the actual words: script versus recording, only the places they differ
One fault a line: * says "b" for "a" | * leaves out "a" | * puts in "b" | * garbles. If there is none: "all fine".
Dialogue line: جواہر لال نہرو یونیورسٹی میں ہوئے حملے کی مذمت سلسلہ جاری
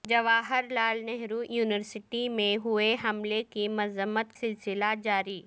all fine